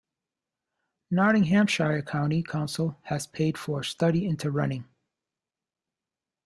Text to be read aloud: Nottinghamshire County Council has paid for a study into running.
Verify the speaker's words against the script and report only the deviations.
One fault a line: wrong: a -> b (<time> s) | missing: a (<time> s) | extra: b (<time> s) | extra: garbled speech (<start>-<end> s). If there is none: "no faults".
no faults